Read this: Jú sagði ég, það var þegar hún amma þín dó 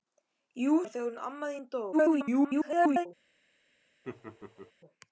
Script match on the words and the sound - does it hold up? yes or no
no